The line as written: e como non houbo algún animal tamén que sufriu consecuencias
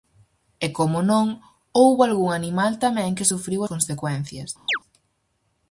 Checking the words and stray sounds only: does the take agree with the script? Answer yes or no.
no